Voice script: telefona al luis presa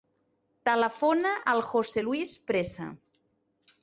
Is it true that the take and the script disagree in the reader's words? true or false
true